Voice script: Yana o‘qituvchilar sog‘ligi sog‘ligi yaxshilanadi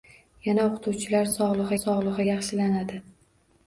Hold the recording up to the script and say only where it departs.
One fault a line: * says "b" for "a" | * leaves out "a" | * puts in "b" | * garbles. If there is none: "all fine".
all fine